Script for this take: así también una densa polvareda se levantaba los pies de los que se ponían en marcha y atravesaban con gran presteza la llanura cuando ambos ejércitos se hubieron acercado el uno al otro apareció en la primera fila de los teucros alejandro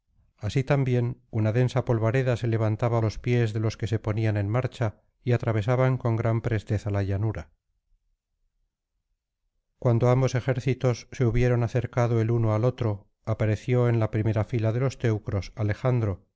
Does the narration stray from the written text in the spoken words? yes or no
no